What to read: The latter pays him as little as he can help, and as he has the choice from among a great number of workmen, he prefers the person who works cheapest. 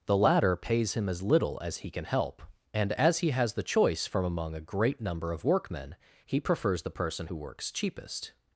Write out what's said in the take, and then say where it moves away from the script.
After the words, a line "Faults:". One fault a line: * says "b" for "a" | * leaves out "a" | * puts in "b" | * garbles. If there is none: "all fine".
The latter pays him as little as he can help, and as he has the choice from among a great number of workmen, he prefers the person who works cheapest.
Faults:
all fine